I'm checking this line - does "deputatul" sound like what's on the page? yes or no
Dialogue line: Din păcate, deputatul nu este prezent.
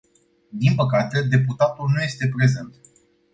yes